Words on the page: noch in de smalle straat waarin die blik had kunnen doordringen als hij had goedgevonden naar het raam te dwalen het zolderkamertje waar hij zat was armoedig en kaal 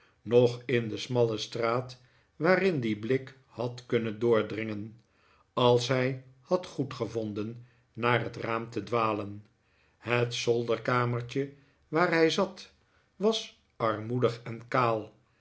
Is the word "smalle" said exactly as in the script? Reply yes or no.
yes